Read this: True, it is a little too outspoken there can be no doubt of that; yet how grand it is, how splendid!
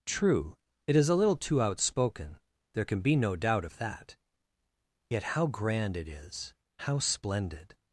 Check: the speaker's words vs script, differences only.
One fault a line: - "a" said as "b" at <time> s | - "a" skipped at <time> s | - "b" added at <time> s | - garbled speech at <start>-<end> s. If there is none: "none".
none